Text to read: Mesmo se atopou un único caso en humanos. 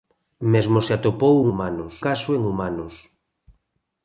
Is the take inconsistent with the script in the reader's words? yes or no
yes